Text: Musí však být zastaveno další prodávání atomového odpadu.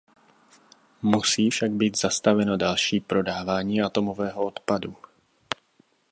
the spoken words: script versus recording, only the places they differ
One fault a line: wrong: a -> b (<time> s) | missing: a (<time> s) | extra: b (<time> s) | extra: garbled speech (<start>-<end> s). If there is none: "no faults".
no faults